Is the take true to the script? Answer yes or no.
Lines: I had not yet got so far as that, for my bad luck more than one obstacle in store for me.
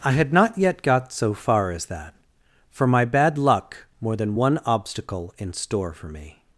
yes